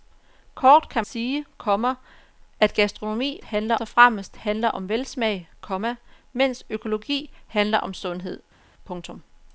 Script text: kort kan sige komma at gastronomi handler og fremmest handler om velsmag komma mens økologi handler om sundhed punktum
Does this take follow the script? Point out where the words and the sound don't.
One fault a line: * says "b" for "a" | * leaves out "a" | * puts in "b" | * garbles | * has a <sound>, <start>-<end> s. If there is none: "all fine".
all fine